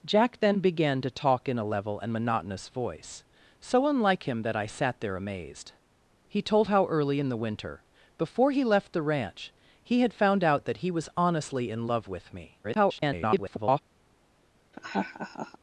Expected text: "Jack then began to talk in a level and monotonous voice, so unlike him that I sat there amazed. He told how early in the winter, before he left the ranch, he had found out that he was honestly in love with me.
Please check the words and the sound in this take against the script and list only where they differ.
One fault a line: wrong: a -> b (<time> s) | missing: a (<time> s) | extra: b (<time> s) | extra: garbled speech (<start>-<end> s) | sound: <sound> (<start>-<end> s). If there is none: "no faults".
extra: garbled speech (12.6-13.8 s)
sound: laugh (14.7-15.6 s)